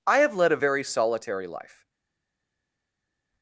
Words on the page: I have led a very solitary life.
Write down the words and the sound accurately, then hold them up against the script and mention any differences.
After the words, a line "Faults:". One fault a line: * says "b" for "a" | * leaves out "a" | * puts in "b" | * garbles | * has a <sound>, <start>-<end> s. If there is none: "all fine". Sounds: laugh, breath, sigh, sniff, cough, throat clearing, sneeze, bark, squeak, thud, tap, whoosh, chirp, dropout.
I have led a very solitary life.
Faults:
all fine